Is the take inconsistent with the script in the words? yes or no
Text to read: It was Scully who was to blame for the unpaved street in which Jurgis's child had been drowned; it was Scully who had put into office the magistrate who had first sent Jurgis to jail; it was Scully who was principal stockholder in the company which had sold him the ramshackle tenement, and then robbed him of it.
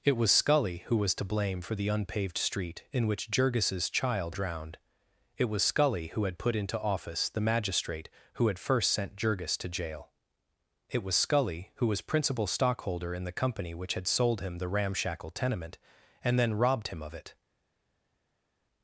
yes